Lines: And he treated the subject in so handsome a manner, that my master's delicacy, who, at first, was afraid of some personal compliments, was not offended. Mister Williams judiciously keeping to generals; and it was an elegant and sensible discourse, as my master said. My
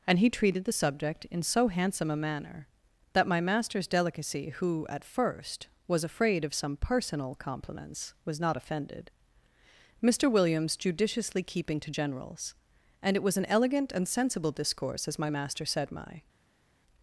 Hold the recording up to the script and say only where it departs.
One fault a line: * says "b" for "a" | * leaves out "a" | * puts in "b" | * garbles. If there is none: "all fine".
all fine